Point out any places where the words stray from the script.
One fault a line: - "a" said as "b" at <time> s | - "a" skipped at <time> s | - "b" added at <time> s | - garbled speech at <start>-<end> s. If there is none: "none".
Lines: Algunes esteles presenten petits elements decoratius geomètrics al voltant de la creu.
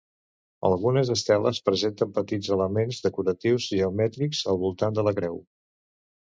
none